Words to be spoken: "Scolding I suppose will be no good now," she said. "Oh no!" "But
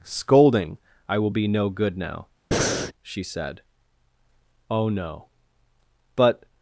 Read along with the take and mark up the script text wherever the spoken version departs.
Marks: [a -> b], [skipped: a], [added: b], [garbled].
"Scolding I [skipped: suppose] will be no good now," she said. "Oh no!" "But